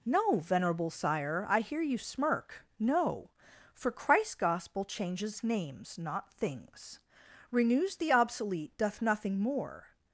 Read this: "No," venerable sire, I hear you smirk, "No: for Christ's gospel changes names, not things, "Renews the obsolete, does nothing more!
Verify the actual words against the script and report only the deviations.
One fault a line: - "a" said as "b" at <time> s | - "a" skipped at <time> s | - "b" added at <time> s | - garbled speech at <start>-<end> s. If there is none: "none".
- "does" said as "doth" at 8.8 s